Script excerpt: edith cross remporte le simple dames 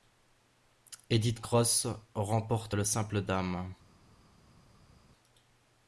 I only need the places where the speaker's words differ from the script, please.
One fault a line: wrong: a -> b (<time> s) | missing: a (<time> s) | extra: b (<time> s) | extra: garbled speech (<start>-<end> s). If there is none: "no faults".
no faults